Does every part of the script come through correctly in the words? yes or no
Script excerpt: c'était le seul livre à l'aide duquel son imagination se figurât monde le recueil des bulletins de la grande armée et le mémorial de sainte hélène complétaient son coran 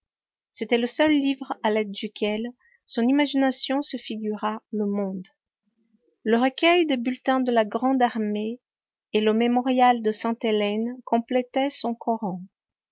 no